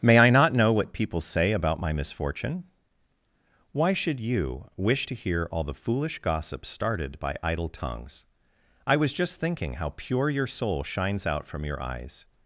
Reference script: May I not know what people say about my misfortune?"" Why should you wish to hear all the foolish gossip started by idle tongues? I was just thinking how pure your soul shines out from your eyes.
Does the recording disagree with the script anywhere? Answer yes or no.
no